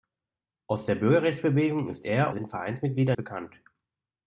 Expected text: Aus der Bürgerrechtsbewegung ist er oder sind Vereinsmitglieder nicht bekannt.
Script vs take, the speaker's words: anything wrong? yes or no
yes